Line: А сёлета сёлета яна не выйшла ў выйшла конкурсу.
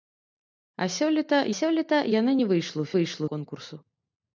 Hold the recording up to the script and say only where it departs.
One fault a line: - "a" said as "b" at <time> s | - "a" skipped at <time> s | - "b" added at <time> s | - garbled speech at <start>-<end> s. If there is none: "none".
none